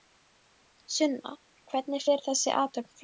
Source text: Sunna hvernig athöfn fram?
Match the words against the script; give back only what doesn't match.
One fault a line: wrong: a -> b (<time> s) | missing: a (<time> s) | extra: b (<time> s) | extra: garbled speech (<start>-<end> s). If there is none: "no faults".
extra: fer þessi (2.0 s)